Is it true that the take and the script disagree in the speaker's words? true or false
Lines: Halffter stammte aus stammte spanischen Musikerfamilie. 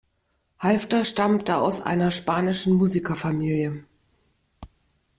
true